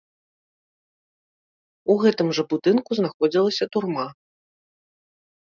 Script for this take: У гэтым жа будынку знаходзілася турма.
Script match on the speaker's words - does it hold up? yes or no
yes